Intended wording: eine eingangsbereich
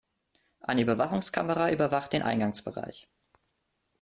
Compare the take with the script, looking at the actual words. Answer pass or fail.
fail